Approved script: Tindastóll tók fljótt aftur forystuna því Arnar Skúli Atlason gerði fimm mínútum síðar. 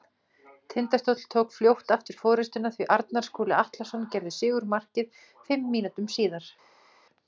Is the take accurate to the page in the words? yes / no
no